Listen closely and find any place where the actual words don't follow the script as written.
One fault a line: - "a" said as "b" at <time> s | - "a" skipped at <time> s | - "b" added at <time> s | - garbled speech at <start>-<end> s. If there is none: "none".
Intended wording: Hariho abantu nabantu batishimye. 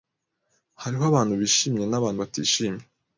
- "bishimye" added at 1.4 s